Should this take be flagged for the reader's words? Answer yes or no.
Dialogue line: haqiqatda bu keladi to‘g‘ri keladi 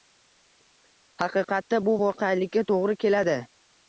yes